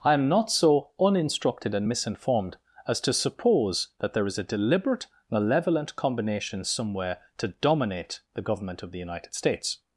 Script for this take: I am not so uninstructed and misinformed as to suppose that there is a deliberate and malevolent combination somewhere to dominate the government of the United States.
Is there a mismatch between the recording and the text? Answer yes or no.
yes